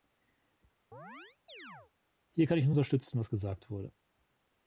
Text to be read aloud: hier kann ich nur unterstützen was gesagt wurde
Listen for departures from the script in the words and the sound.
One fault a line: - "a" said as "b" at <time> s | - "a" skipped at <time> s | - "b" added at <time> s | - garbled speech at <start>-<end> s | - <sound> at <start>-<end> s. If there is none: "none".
- chirp at 0.9-1.9 s